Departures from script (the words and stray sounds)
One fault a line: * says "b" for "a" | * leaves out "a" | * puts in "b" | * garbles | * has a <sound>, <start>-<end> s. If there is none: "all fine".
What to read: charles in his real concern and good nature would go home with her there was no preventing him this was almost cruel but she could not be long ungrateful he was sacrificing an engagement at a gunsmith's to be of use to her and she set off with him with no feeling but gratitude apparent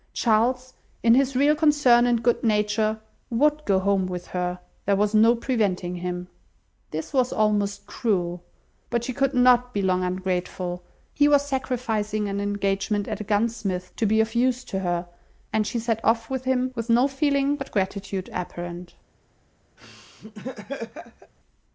* has a laugh, 19.8-21.3 s